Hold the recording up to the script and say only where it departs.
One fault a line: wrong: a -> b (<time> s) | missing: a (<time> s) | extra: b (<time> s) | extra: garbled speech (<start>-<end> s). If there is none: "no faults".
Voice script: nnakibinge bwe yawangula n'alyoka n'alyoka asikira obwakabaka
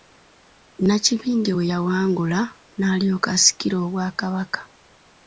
missing: n'alyoka (3.3 s)